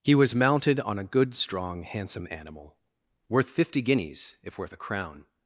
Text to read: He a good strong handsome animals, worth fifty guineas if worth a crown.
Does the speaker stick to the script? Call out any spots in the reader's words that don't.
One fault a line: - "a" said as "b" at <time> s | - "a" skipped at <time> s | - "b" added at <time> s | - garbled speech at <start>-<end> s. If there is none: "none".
- "was mounted on" added at 0.1 s
- "animals" said as "animal" at 2.3 s